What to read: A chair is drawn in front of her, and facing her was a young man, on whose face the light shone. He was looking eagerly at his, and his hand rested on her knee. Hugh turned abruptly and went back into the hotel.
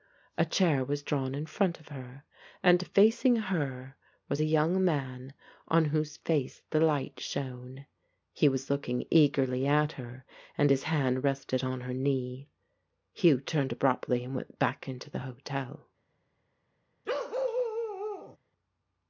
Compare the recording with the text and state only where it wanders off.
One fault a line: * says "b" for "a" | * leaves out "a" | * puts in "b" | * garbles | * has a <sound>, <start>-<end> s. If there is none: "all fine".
* says "was" for "is"
* says "her" for "his"
* has a bark, 17.0-18.4 s